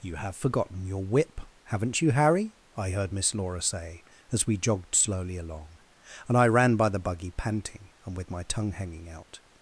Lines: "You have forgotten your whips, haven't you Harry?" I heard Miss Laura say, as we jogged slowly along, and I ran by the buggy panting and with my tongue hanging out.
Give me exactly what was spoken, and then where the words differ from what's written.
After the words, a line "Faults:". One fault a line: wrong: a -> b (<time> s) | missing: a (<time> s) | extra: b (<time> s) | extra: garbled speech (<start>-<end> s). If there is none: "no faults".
"You have forgotten your whip, haven't you Harry?" I heard Miss Laura say, as we jogged slowly along, and I ran by the buggy panting and with my tongue hanging out.
Faults:
wrong: whips -> whip (1.1 s)